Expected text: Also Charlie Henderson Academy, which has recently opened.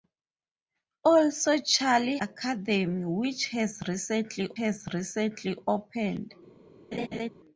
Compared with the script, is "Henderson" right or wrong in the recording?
wrong